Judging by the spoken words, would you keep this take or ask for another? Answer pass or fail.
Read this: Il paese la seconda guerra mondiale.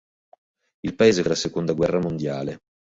pass